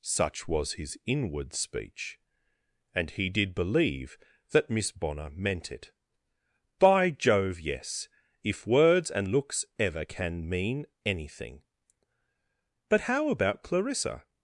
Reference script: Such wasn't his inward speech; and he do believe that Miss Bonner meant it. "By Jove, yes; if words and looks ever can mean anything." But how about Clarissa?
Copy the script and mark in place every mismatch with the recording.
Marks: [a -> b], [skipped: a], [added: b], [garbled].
Such [wasn't -> was] his inward speech; and he [do -> did] believe that Miss Bonner meant it. "By Jove, yes; if words and looks ever can mean anything." But how about Clarissa?